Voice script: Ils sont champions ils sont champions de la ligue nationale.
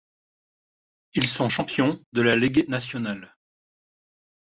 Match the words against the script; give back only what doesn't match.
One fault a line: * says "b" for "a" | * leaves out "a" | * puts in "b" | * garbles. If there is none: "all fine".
* leaves out "ils sont champions"